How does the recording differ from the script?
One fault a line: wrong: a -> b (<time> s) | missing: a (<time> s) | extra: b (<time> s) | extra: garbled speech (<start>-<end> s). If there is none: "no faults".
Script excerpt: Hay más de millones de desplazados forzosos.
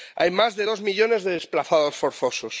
extra: dos (0.6 s)